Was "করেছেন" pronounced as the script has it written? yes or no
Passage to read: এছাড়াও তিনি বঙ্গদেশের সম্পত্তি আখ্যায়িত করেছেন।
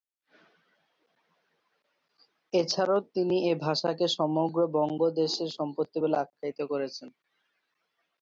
yes